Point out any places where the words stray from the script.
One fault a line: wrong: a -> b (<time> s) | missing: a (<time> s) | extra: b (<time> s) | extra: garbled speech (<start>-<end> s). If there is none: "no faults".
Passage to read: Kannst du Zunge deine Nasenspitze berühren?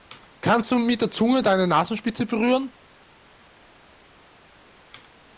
extra: mit der (0.8 s)